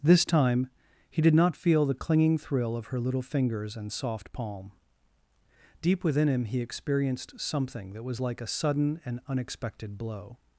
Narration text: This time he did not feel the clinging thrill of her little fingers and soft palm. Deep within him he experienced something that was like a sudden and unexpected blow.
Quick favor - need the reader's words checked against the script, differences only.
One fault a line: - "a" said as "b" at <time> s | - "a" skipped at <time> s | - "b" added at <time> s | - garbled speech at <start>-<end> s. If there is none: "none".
none